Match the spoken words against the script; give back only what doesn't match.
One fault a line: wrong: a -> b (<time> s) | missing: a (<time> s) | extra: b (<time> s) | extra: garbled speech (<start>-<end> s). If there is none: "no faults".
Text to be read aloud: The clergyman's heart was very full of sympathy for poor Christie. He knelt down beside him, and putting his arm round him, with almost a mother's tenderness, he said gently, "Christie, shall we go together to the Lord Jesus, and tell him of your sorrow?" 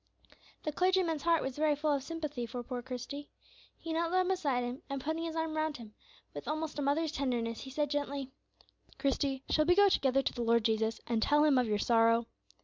no faults